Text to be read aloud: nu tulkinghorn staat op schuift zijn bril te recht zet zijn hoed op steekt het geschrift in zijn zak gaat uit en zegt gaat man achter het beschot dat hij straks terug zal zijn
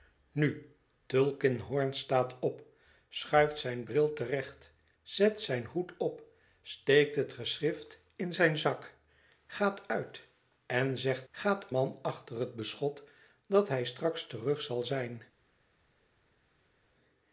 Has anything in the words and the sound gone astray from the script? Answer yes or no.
no